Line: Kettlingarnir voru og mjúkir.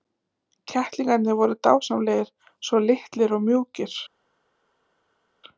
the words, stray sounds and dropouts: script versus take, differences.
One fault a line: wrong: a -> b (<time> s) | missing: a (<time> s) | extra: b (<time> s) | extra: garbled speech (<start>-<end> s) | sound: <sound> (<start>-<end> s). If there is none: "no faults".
extra: dásamlegir svo litlir (1.7 s)